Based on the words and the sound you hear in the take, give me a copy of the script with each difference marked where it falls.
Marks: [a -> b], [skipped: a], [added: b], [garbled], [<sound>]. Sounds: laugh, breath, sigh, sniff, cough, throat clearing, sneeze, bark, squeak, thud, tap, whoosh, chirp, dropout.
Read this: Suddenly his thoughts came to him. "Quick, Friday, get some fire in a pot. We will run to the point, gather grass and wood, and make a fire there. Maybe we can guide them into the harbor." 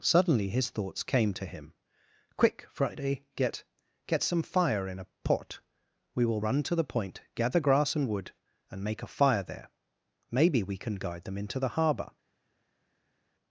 Suddenly his thoughts came to him. "Quick, Friday, get [added: get] some fire in a pot. We will run to the point, gather grass and wood, and make a fire there. Maybe we can guide them into the harbor."